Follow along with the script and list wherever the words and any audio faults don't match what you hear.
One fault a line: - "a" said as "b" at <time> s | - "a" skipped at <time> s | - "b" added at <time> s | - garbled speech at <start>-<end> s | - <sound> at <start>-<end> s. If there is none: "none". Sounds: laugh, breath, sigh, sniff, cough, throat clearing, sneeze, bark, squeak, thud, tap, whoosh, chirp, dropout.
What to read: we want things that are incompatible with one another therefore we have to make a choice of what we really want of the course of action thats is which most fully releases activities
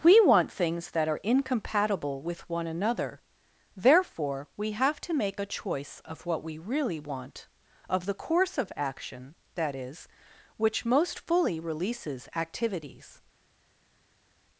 - "thats" said as "that" at 9.6 s